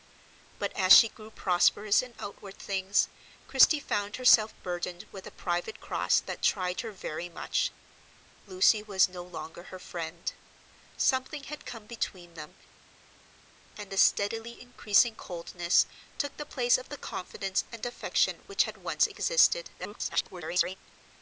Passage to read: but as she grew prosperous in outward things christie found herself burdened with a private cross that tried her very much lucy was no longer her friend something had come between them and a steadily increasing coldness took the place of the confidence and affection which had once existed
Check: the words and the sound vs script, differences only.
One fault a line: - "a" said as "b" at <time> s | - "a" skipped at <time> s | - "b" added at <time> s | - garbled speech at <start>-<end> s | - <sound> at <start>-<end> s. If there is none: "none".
- garbled speech at 19.8-20.8 s